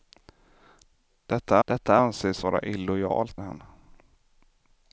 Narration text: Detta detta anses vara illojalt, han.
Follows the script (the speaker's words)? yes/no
yes